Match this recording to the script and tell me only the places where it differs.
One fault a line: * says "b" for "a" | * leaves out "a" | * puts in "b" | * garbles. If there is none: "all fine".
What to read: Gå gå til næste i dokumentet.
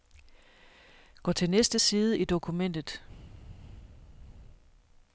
* leaves out "gå"
* puts in "side"